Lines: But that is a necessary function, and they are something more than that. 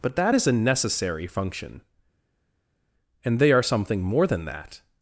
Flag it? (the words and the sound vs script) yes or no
no